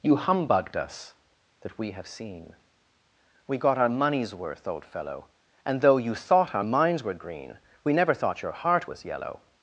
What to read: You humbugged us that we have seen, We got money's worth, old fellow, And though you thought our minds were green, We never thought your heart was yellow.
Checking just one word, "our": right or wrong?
right